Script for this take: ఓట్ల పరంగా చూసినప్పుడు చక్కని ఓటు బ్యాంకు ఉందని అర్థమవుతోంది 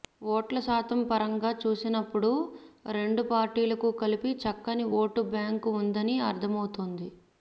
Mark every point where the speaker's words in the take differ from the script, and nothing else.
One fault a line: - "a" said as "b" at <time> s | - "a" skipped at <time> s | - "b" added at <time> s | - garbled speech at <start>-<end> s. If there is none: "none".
- "శాతం" added at 0.6 s
- "రెండు పార్టీలకు కలిపి" added at 3.0 s